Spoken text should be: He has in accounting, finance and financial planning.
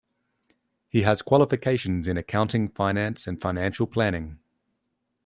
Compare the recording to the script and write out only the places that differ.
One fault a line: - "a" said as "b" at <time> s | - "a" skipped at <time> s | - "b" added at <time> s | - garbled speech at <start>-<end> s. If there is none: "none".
- "qualifications" added at 1.2 s